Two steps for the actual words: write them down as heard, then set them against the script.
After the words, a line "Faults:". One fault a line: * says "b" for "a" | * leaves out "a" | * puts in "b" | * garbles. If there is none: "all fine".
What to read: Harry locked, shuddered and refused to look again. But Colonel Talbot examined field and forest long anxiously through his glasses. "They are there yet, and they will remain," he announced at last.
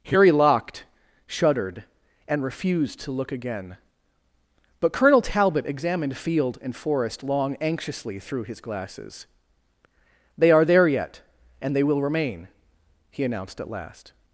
Harry locked, shuddered and refused to look again. But Colonel Talbot examined field and forest long anxiously through his glasses. "They are there yet, and they will remain," he announced at last.
Faults:
all fine